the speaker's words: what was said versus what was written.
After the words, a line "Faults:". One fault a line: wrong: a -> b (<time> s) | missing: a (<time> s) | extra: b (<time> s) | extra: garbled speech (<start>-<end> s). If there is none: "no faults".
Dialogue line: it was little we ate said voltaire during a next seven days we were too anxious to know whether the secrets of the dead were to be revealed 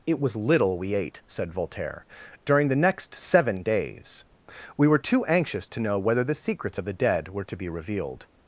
it was little we ate said voltaire during the next seven days we were too anxious to know whether the secrets of the dead were to be revealed
Faults:
wrong: a -> the (2.7 s)